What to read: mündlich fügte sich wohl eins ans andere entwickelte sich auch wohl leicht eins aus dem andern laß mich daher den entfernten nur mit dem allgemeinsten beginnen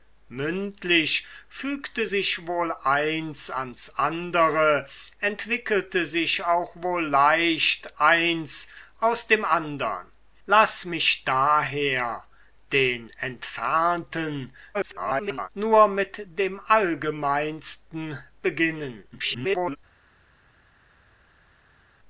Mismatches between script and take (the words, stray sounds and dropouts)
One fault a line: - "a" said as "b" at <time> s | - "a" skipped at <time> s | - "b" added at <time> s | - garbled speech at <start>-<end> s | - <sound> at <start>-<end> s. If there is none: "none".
- garbled speech at 14.7-15.5 s
- garbled speech at 19.1-19.8 s